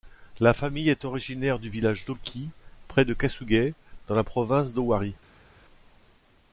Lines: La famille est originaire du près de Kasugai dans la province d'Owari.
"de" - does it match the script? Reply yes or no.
yes